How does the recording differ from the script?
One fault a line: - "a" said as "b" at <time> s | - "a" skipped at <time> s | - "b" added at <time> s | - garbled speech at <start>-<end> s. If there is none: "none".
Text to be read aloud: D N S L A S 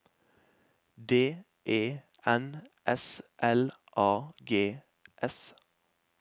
- "E" added at 1.7 s
- "G" added at 4.4 s